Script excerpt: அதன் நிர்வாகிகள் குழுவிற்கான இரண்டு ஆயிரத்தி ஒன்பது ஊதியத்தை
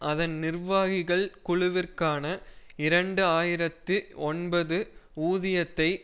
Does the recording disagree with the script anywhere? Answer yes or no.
no